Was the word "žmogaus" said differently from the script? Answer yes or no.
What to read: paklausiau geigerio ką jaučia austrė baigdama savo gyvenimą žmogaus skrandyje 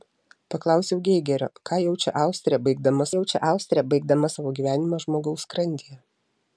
no